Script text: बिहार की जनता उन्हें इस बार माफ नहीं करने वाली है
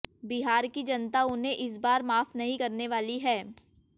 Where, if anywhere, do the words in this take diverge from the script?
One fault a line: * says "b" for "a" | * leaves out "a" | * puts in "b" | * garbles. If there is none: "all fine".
all fine